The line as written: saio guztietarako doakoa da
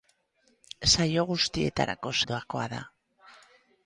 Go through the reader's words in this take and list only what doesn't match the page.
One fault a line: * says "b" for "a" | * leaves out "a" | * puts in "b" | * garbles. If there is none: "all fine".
all fine